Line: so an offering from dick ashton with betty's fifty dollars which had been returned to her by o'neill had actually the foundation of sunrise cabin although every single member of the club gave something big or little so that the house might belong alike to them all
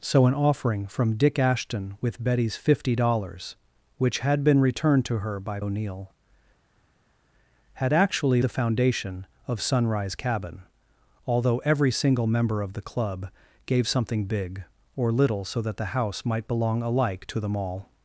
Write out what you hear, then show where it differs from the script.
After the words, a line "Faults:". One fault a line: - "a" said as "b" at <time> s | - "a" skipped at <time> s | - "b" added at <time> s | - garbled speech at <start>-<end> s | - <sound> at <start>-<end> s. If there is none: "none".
so an offering from dick ashton with betty's fifty dollars which had been returned to her by o'neill had actually the foundation of sunrise cabin although every single member of the club gave something big or little so that the house might belong alike to them all
Faults:
none